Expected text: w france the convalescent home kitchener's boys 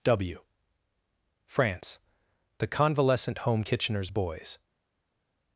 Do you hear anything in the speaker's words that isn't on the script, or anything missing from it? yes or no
no